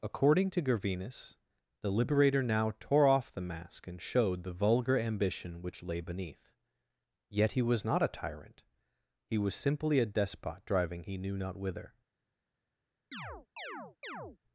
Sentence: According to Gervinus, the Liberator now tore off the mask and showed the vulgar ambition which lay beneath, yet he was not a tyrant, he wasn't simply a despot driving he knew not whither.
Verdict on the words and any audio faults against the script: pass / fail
fail